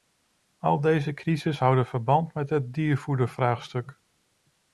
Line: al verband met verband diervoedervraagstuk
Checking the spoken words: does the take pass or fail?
fail